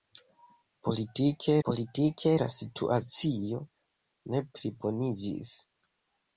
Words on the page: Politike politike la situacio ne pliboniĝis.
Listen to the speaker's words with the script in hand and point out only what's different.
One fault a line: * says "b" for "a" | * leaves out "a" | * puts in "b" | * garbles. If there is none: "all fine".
all fine